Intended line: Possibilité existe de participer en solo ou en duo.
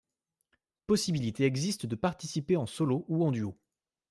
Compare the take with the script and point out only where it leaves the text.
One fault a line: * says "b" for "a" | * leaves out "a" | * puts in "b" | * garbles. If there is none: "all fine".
all fine